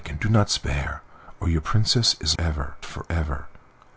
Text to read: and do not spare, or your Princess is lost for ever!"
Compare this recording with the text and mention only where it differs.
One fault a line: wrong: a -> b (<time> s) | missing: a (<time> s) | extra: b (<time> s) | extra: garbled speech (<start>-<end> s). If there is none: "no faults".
wrong: lost -> ever (2.4 s)